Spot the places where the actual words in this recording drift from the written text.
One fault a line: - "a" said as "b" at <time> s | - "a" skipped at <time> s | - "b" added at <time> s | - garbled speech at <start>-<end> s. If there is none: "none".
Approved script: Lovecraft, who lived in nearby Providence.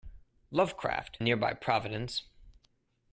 - "who lived in" skipped at 1.2 s